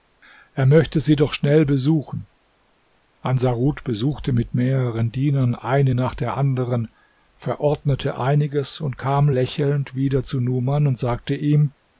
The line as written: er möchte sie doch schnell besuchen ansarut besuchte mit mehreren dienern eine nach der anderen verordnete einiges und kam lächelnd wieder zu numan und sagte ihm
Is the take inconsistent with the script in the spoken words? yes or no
no